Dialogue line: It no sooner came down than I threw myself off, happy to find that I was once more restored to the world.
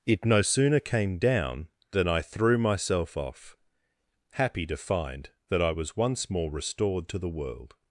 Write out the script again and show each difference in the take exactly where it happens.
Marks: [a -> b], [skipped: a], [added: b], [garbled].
It no sooner came down than I threw myself off, happy to find that I was once more restored to the world.